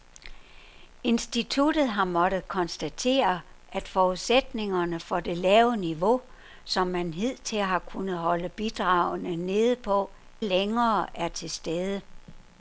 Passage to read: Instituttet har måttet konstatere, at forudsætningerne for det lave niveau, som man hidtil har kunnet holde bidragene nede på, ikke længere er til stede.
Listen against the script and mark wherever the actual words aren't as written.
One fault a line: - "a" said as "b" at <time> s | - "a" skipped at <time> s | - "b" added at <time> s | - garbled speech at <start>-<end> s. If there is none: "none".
- "ikke" skipped at 10.1 s